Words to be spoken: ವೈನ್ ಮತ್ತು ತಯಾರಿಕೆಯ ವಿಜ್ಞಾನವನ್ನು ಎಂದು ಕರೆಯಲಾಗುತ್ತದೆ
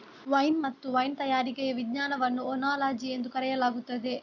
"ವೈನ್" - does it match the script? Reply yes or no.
yes